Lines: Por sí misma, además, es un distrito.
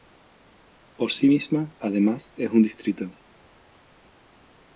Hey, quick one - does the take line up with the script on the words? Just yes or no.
yes